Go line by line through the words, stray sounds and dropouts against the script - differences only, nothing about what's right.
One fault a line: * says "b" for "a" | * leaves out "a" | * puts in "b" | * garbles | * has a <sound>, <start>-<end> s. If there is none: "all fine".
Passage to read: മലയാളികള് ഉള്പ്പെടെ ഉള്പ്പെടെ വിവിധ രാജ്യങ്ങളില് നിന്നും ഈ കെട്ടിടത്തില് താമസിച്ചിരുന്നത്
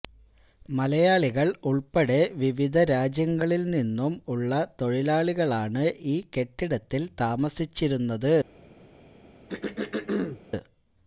* leaves out "ഉള്പ്പെടെ"
* puts in "ഉള്ള തൊഴിലാളികളാണ്"
* has a throat clearing, 9.5-10.4 s